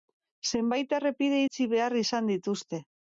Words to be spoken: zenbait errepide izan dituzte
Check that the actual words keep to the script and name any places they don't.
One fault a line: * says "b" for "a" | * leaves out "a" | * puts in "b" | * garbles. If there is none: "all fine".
* puts in "itxi behar"